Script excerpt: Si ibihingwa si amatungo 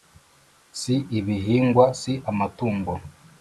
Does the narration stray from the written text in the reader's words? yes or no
no